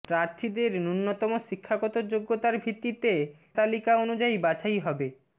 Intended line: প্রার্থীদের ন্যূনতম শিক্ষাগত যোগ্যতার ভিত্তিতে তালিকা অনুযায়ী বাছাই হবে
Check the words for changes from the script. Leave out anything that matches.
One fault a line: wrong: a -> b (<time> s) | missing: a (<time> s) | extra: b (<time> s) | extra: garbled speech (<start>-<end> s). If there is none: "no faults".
no faults